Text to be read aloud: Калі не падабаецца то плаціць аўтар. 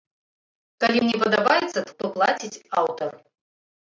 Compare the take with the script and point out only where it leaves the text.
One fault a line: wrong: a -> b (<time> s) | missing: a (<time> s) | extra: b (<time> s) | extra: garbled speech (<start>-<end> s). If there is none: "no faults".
no faults